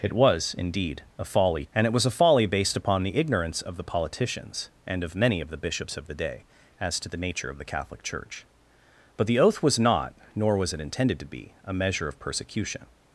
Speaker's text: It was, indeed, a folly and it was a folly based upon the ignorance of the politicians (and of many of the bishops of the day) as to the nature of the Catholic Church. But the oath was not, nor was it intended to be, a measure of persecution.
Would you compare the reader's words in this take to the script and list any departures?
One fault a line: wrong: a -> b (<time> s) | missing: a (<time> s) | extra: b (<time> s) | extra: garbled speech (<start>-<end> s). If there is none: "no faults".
no faults